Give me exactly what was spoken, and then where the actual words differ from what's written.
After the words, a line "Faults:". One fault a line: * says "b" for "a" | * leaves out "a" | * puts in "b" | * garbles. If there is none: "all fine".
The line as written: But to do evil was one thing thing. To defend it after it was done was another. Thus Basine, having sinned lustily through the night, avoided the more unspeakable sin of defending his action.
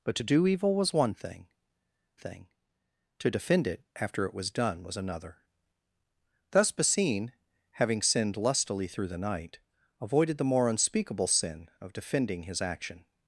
But to do evil was one thing thing. To defend it after it was done was another. Thus Basine, having sinned lustily through the night, avoided the more unspeakable sin of defending his action.
Faults:
all fine